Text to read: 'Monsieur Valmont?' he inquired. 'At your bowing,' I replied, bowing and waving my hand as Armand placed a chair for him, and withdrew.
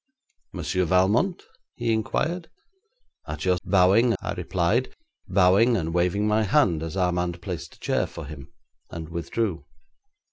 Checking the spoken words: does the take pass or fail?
pass